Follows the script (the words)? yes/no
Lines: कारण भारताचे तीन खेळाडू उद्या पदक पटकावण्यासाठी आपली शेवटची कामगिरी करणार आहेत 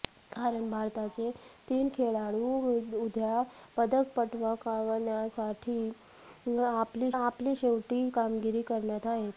no